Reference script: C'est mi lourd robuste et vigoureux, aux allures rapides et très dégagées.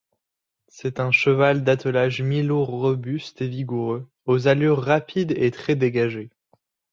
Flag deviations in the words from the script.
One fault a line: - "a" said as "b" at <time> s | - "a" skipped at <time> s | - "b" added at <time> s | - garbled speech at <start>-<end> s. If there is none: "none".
- "un cheval d'attelage" added at 1.0 s